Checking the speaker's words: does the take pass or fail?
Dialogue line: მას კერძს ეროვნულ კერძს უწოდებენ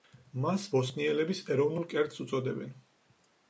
fail